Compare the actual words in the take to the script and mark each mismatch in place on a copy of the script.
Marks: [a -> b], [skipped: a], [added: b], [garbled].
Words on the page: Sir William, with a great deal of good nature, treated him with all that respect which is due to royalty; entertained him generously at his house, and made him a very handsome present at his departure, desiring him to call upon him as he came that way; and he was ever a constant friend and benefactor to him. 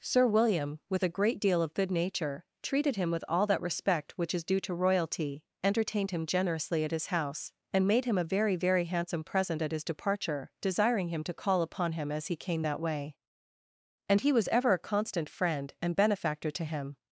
Sir William, with a great deal of good nature, treated him with all that respect which is due to royalty; entertained him generously at his house, and made him a very [added: very] handsome present at his departure, desiring him to call upon him as he came that way; and he was ever a constant friend and benefactor to him.